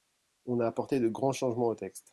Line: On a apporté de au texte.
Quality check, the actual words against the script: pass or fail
fail